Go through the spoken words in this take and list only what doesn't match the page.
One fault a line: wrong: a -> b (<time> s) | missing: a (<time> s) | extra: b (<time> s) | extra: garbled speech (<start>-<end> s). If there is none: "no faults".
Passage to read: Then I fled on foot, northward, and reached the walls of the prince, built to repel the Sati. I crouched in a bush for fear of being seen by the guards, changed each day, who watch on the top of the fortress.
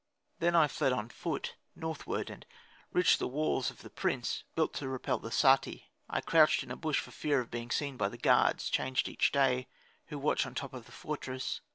no faults